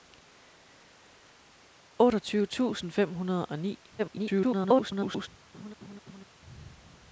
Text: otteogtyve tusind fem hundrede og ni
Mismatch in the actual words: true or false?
true